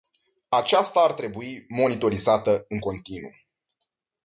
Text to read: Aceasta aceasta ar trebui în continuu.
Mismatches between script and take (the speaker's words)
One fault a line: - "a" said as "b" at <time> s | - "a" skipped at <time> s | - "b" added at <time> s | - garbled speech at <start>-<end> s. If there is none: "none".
- "aceasta" skipped at 1.0 s
- "monitorizată" added at 1.7 s